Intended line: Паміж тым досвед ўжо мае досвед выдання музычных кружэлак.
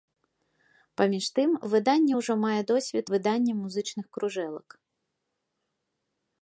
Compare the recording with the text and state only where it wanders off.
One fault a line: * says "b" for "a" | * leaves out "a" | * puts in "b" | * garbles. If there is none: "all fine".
* says "выданне" for "досвед"